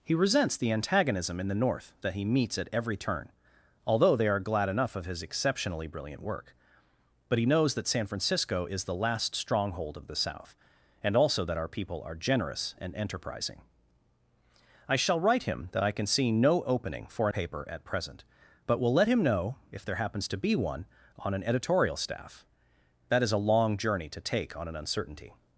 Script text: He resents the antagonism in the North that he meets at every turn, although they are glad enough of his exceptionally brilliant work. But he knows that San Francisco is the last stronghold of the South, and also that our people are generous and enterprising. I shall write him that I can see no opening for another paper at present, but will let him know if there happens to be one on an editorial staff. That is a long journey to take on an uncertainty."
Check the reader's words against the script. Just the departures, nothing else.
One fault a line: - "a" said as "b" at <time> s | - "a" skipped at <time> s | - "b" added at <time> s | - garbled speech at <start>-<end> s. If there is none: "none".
- "another" skipped at 17.3 s